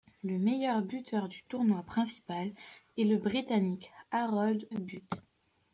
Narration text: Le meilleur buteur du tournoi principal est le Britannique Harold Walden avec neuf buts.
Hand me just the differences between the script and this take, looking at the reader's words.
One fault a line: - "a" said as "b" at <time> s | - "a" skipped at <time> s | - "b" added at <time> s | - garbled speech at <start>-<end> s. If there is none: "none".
- "Walden avec neuf" skipped at 4.7 s